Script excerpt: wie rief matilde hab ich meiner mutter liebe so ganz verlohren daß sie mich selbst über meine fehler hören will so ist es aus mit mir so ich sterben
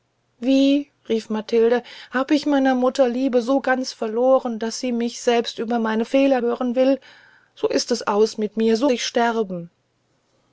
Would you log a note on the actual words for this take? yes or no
no